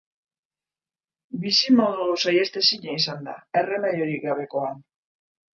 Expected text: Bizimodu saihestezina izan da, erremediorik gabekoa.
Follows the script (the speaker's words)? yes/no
yes